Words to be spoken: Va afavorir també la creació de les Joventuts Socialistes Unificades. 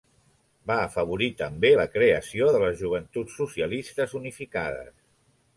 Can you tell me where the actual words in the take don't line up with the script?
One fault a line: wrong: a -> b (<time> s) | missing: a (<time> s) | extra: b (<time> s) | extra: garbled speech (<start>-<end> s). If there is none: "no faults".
no faults